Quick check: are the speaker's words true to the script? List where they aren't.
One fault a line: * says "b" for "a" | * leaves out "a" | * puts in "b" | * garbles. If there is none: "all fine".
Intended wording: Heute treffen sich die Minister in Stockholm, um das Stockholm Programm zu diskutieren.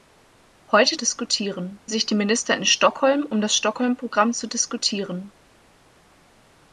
* says "diskutieren" for "treffen"